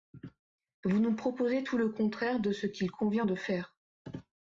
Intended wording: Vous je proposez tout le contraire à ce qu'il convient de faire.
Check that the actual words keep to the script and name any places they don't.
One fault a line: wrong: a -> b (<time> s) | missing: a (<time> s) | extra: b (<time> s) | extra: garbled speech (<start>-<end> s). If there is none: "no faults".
wrong: je -> nous (1.0 s)
wrong: à -> de (2.4 s)